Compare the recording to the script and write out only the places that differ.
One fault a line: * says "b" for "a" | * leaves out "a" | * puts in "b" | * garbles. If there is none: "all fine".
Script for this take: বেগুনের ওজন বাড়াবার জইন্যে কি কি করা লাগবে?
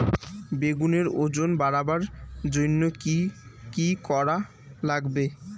all fine